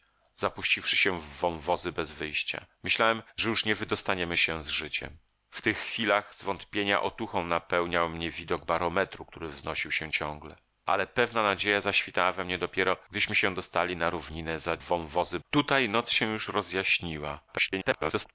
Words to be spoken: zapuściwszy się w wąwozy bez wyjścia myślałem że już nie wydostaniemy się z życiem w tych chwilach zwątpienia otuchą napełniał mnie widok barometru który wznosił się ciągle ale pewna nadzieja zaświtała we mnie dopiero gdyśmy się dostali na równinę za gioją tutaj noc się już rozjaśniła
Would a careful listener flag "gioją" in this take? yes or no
yes